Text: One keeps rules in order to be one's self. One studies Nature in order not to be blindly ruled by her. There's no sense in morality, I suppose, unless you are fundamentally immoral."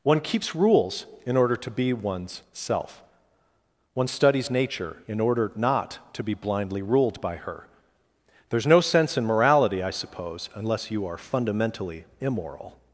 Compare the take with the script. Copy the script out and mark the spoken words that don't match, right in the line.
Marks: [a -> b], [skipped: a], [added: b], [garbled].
One keeps rules in order to be one's self. One studies Nature in order not to be blindly ruled by her. There's no sense in morality, I suppose, unless you are fundamentally immoral."